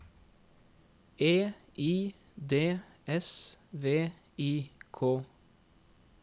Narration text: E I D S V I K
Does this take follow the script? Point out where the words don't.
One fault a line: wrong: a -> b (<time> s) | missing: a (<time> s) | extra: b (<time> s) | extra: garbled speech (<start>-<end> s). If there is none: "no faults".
no faults